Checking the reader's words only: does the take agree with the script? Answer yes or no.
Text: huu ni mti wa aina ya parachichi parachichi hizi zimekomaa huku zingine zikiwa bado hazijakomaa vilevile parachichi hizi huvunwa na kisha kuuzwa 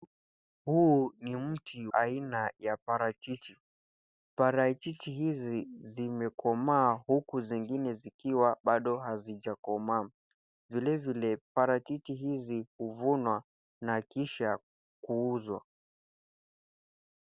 no